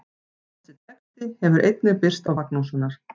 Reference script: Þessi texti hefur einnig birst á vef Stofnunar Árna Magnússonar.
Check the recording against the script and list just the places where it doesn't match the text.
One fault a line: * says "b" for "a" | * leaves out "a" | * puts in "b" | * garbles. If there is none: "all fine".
* leaves out "vef Stofnunar Árna"